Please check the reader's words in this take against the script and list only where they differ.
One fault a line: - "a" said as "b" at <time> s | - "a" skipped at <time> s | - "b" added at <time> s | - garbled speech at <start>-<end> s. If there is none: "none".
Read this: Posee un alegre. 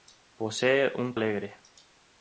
none